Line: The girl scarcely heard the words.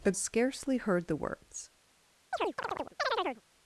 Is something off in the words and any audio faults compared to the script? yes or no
yes